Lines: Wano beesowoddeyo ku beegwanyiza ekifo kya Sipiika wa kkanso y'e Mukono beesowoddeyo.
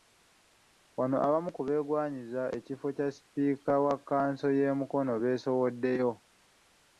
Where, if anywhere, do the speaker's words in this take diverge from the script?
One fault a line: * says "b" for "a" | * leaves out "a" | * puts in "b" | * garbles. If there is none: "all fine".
* says "abamu" for "beesowoddeyo"